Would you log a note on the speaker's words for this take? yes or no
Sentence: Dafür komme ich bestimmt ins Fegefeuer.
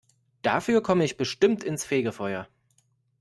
no